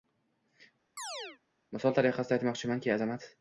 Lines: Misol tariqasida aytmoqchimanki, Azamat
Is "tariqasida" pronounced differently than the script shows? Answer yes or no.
no